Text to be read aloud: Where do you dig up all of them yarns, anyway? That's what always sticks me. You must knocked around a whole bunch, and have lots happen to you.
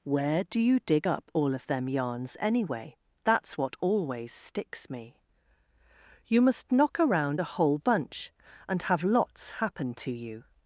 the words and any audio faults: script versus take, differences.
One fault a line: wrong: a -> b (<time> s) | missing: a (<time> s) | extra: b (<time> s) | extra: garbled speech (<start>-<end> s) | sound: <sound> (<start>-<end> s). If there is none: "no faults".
wrong: knocked -> knock (6.7 s)